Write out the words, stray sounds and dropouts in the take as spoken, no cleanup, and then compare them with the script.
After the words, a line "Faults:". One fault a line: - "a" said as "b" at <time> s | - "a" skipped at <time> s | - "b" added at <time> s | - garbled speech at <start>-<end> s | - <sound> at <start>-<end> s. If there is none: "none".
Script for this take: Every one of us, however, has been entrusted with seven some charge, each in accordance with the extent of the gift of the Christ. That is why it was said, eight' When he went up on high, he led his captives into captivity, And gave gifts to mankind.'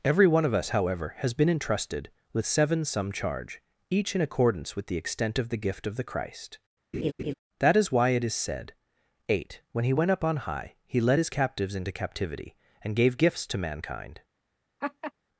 Every one of us, however, has been entrusted with seven some charge, each in accordance with the extent of the gift of the Christ. That is why it is said, eight' When he went up on high, he led his captives into captivity, And gave gifts to mankind.'
Faults:
- laugh at 6.9-7.3 s
- "was" said as "is" at 8.2 s
- laugh at 14.8-15.1 s